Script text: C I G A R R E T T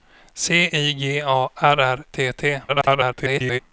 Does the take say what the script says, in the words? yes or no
no